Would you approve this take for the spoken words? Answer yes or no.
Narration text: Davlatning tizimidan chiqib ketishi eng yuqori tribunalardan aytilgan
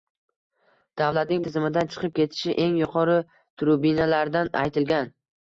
yes